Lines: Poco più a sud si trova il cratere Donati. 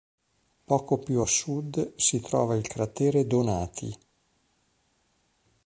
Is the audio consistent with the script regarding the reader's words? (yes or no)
yes